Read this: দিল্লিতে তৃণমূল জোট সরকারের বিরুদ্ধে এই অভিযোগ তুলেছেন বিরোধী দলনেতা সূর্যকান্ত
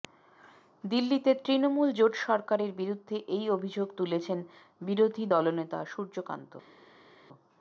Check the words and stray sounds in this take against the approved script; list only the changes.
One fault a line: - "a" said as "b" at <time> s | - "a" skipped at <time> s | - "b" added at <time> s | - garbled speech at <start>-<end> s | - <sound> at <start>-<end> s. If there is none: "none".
none